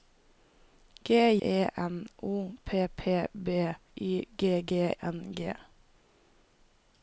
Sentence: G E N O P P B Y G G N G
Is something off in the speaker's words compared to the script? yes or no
no